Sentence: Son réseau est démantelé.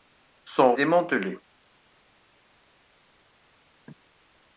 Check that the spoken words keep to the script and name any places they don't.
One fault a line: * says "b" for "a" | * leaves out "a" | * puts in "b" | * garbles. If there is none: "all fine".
* leaves out "réseau est"